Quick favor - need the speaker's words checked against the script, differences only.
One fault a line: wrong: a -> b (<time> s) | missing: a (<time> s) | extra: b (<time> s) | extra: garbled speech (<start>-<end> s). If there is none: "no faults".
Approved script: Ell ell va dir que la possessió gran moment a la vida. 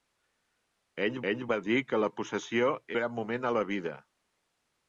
no faults